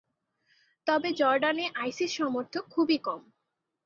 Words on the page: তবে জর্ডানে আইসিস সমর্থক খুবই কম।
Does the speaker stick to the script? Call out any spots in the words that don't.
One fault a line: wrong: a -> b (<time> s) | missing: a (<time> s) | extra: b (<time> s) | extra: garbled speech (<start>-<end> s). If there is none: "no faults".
no faults